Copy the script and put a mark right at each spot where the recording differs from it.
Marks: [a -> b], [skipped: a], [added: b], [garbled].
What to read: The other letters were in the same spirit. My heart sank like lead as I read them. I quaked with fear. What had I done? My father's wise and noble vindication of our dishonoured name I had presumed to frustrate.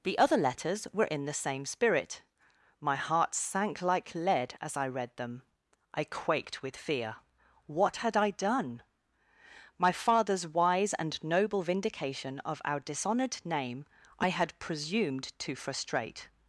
The other letters were in the same spirit. My heart sank like lead as I read them. I quaked with fear. What had I done? My father's wise and noble vindication of our dishonoured name I had presumed to frustrate.